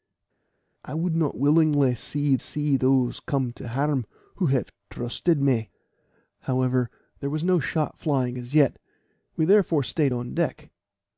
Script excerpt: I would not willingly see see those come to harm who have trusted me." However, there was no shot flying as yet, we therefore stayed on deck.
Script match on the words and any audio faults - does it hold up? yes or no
yes